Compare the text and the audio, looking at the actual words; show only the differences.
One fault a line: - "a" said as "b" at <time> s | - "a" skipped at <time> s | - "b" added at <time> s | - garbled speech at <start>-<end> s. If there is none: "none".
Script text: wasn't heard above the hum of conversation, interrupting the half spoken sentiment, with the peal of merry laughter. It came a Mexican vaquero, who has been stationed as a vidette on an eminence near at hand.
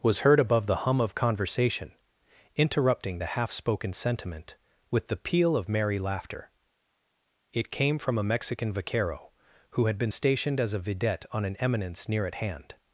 - "wasn't" said as "was" at 0.0 s
- "from" added at 8.0 s
- "has" said as "had" at 9.9 s